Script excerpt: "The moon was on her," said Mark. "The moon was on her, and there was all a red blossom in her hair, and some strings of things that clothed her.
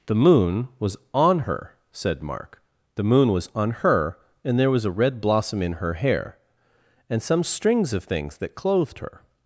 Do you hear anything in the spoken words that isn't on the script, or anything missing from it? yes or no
yes